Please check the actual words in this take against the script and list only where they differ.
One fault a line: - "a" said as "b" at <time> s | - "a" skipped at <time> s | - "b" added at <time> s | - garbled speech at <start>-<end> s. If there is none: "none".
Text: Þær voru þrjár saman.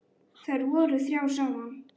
none